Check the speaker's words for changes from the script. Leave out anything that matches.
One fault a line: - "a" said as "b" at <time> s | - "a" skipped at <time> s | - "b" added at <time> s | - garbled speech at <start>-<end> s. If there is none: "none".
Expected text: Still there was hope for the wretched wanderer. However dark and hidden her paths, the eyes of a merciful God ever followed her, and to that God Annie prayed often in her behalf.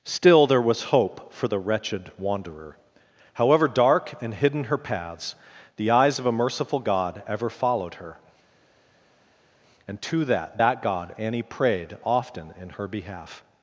- "that" added at 10.6 s